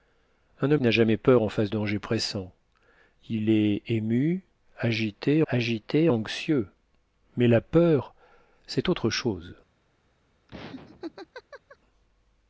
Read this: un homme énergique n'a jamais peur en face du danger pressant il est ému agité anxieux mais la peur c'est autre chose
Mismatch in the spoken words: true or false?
true